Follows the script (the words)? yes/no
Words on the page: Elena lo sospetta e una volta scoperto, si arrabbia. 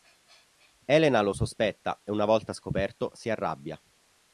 yes